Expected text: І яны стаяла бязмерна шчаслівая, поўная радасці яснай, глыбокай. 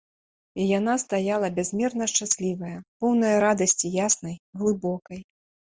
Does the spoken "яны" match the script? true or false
false